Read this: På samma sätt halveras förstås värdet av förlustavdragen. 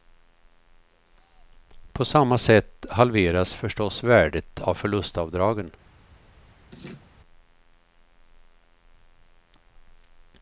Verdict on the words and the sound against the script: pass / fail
fail